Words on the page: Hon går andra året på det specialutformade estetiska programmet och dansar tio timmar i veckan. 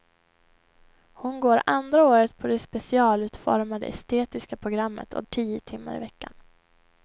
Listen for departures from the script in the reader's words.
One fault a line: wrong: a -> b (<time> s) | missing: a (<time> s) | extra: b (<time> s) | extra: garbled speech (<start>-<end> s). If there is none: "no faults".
missing: dansar (5.2 s)